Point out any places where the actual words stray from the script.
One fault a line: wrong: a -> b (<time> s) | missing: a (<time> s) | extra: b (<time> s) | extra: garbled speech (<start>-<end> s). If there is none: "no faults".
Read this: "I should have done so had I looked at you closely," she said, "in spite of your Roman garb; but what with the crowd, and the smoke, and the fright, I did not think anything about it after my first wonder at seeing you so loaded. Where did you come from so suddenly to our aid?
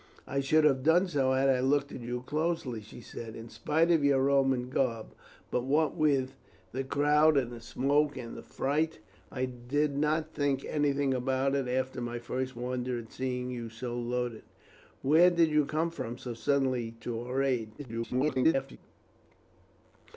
extra: garbled speech (17.8-18.8 s)